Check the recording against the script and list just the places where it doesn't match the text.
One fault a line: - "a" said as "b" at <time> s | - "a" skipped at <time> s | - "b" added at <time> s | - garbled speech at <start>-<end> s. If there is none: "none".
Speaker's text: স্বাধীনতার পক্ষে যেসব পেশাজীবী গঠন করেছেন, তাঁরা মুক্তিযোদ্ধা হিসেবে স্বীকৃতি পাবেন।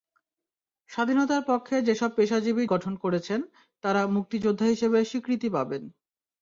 none